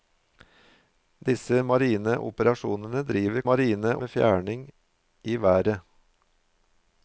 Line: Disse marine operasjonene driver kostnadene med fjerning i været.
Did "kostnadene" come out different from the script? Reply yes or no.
yes